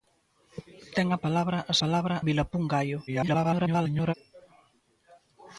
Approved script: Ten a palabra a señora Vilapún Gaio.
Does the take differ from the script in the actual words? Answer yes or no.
yes